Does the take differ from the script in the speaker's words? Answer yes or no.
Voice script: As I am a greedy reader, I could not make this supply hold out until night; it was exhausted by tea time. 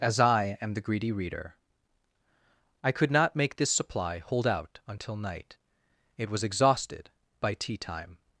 yes